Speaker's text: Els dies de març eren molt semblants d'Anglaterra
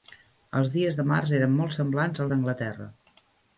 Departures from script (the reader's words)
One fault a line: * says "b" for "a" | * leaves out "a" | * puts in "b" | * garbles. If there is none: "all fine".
all fine